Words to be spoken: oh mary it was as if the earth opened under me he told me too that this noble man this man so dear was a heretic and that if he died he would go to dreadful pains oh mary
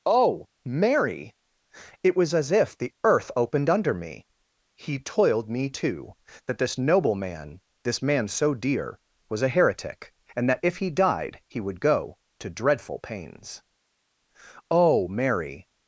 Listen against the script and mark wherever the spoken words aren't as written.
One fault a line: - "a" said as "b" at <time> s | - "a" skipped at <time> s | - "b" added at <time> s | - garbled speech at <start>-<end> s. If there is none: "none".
- "told" said as "toiled" at 5.0 s